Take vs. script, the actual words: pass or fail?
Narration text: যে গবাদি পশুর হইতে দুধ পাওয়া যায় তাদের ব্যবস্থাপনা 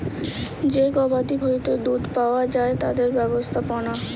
fail